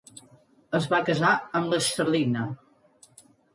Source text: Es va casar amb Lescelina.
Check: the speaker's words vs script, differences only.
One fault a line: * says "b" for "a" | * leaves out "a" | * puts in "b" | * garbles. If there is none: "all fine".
all fine